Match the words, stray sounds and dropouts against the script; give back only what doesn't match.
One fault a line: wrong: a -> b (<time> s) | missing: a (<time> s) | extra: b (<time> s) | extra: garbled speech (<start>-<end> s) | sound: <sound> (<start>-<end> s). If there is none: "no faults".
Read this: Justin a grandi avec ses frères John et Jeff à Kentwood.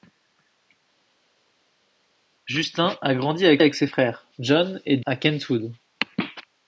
extra: avec (3.6 s)
missing: Jeff (5.0 s)